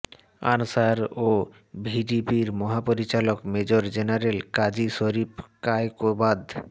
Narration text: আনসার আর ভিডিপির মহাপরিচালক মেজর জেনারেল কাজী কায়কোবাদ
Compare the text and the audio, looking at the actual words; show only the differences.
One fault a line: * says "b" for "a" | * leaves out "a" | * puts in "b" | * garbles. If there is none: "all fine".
* says "ও" for "আর"
* puts in "শরীফ"